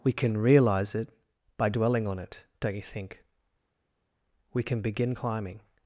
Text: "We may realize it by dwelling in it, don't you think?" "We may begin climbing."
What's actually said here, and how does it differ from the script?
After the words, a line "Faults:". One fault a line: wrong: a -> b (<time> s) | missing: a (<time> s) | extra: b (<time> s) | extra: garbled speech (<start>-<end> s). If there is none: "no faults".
"We can realize it by dwelling on it, don't you think?" "We can begin climbing."
Faults:
wrong: may -> can (0.1 s)
wrong: in -> on (2.1 s)
wrong: may -> can (4.6 s)